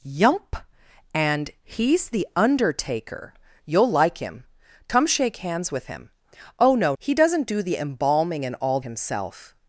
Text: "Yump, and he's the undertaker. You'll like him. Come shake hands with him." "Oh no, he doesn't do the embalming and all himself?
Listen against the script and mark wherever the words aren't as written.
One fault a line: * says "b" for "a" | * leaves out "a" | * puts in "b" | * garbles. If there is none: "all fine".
all fine